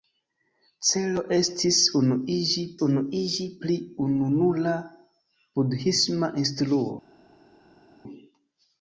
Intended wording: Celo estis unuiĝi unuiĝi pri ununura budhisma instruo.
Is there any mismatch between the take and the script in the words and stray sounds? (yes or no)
no